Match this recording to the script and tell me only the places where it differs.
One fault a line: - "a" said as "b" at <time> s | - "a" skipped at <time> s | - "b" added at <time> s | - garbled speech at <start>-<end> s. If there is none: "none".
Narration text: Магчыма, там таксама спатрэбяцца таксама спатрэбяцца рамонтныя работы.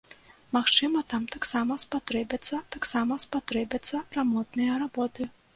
none